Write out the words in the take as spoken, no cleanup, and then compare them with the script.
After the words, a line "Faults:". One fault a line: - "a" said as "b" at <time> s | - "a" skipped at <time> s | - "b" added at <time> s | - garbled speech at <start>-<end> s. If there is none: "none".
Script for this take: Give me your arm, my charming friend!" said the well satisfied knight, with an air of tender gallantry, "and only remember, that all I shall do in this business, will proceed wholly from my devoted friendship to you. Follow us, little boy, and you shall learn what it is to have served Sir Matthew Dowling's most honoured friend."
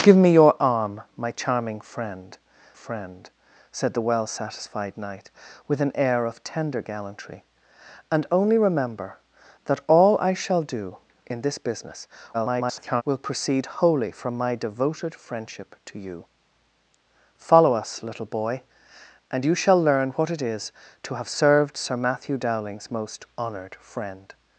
Give me your arm, my charming friend friend!" said the well satisfied knight, with an air of tender gallantry, "and only remember, that all I shall do in this business, [garbled] will proceed wholly from my devoted friendship to you. Follow us, little boy, and you shall learn what it is to have served Sir Matthew Dowling's most honoured friend."
Faults:
- "friend" added at 2.7 s
- garbled speech at 12.3-13.0 s